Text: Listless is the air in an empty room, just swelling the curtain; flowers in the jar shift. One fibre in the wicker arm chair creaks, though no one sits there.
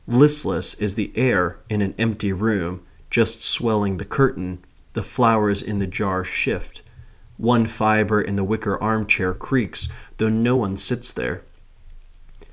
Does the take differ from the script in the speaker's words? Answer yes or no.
yes